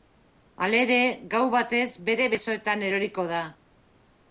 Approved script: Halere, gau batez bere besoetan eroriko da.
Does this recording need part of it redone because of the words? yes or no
no